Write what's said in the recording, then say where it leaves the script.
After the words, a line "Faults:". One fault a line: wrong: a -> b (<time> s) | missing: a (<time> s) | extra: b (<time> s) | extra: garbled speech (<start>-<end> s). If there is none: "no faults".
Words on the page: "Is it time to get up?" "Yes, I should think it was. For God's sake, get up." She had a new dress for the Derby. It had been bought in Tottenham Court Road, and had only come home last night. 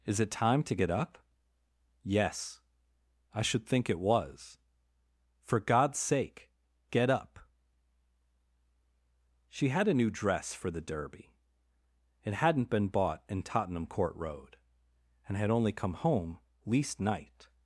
"Is it time to get up?" "Yes, I should think it was. For God's sake, get up." She had a new dress for the Derby. It hadn't been bought in Tottenham Court Road, and had only come home least night.
Faults:
wrong: had -> hadn't (12.3 s)
wrong: last -> least (16.6 s)